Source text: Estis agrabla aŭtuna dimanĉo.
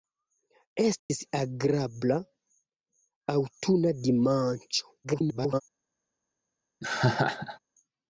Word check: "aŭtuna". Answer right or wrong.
right